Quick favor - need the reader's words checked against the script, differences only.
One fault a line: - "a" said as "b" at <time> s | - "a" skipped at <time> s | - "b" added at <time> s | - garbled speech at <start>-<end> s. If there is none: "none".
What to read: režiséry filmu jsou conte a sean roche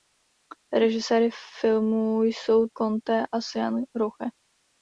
none